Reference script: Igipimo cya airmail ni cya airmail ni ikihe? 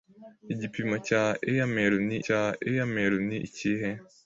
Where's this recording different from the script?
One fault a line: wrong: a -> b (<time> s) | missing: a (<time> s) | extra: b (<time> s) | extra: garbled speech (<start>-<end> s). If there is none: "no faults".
no faults